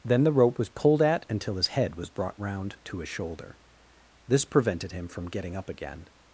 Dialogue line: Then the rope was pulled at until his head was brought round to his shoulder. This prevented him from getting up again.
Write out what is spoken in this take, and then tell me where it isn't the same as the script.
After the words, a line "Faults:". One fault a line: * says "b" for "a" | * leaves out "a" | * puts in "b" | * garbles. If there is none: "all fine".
Then the rope was pulled at until his head was brought round to his shoulder. This prevented him from getting up again.
Faults:
all fine